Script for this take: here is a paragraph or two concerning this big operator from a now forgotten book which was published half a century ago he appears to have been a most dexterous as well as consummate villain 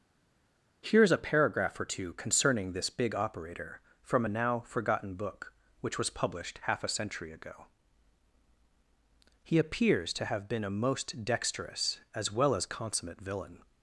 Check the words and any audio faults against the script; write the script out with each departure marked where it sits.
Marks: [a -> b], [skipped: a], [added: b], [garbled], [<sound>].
here is a paragraph or two concerning this big operator from a now forgotten book which was published half a century ago he appears to have been a most dexterous as well as consummate villain